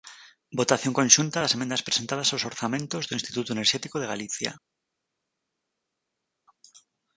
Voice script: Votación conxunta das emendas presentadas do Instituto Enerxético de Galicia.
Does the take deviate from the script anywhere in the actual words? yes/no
yes